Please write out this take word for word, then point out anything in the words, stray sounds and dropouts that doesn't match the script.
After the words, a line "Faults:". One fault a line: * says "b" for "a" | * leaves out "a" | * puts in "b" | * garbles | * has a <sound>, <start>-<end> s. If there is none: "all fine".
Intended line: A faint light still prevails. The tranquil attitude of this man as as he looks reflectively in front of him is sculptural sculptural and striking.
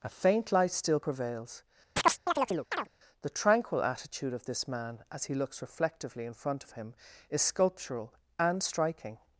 A faint light still prevails. The tranquil attitude of this man as he looks reflectively in front of him is sculptural and striking.
Faults:
* has a chirp, 2.0-2.9 s
* leaves out "as"
* leaves out "sculptural"